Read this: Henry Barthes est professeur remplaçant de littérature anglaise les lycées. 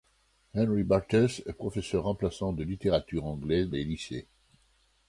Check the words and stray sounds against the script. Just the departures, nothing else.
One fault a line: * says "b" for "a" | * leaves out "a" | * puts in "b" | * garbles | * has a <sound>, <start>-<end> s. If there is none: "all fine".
all fine